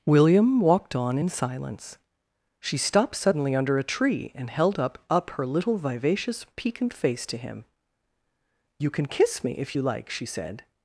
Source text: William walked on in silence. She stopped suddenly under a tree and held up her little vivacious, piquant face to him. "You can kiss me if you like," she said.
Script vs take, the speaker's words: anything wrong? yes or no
yes